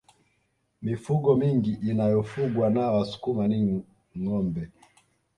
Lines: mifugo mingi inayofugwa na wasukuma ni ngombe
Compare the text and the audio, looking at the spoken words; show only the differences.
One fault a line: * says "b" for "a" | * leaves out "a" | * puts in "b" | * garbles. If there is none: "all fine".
all fine